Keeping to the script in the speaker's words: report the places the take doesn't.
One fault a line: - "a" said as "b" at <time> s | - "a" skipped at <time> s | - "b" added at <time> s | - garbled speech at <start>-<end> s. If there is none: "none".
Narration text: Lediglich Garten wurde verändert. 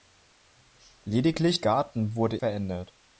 none